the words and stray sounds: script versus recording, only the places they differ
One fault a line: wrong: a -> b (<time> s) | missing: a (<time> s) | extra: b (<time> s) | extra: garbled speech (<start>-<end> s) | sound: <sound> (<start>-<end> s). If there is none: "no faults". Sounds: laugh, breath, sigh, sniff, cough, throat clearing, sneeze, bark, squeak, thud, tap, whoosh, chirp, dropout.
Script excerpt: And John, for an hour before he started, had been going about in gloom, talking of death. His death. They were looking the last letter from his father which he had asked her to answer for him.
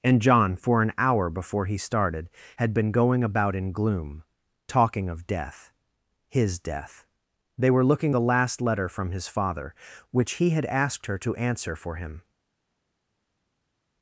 no faults